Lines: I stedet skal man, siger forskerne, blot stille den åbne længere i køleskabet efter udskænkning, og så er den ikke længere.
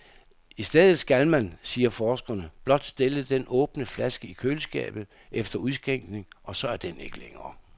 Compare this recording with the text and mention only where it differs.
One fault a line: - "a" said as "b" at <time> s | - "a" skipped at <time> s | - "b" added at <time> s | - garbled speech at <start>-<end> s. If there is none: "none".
- "længere" said as "flaske" at 3.9 s